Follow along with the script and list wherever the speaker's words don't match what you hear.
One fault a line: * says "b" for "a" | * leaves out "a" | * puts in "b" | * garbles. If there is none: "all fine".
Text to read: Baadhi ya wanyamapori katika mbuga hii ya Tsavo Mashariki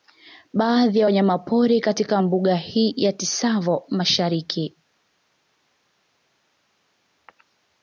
all fine